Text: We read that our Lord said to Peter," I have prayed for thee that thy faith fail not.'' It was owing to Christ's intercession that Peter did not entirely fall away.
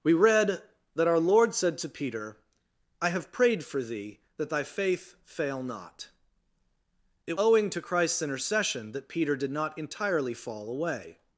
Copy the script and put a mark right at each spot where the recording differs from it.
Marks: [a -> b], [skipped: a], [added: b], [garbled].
We read that our Lord said to Peter," I have prayed for thee that thy faith fail not.'' It [skipped: was] owing to Christ's intercession that Peter did not entirely fall away.